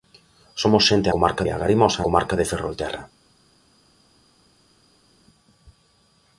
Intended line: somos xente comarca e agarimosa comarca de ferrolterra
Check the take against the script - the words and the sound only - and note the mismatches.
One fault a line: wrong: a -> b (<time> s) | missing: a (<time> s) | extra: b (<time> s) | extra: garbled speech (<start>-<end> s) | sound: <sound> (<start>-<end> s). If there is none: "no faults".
no faults